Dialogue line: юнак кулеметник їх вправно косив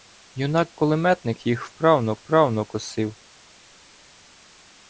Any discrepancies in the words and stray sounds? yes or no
yes